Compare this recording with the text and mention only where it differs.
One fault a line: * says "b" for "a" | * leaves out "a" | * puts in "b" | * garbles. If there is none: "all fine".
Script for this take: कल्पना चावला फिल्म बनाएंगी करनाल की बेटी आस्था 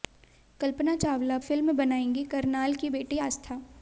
all fine